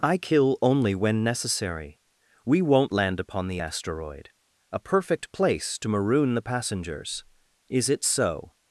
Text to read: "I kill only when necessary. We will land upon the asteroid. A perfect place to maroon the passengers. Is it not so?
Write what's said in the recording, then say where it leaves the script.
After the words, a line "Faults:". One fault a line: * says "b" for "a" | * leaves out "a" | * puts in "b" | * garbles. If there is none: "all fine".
"I kill only when necessary. We won't land upon the asteroid. A perfect place to maroon the passengers. Is it so?
Faults:
* says "won't" for "will"
* leaves out "not"